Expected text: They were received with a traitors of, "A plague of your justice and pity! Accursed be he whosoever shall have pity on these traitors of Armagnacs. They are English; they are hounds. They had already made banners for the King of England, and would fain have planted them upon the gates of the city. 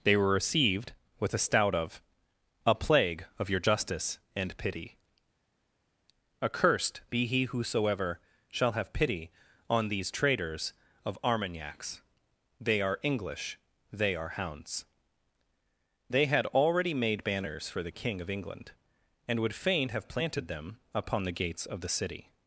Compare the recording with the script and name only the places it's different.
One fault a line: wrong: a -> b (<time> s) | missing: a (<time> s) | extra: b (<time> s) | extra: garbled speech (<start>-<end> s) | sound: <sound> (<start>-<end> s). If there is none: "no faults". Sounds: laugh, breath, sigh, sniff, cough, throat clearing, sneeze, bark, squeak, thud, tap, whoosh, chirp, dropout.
wrong: traitors -> stout (1.4 s)